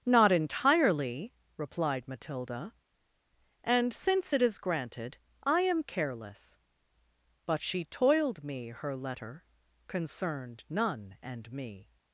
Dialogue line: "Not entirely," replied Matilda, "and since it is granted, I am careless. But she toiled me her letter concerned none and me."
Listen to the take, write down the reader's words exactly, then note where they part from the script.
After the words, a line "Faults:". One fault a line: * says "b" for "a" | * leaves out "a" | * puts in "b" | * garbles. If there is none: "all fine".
"Not entirely," replied Matilda, "and since it is granted, I am careless. But she toiled me her letter concerned none and me."
Faults:
all fine